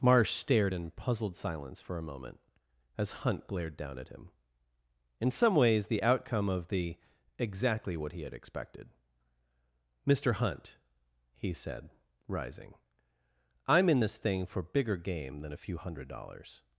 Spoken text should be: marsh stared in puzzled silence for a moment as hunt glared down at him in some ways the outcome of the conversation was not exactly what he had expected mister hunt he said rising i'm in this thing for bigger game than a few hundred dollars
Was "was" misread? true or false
true